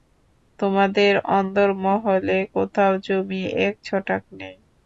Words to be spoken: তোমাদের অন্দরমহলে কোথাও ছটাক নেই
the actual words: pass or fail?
fail